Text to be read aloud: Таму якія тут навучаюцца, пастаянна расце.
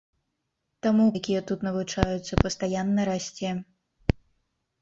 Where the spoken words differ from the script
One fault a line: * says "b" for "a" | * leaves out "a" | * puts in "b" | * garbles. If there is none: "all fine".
all fine